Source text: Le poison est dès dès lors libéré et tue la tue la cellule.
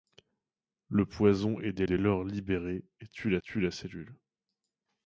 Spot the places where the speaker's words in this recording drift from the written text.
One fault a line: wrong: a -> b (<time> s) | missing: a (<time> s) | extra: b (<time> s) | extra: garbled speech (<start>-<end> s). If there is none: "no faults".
no faults